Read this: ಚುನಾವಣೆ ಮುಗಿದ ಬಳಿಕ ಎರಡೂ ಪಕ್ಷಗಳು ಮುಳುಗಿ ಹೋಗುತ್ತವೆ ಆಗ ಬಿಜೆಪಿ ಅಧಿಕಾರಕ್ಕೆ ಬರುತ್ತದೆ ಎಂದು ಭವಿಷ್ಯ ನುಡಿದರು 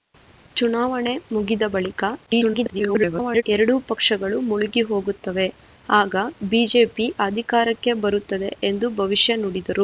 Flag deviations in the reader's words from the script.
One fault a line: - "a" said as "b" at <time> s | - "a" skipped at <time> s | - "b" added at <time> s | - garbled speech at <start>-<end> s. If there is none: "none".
- garbled speech at 2.3-3.4 s